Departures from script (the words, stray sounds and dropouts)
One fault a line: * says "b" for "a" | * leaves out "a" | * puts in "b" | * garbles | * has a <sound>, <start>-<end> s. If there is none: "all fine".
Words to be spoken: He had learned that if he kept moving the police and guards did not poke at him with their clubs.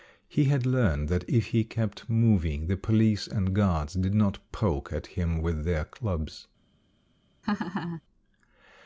* has a laugh, 7.4-8.0 s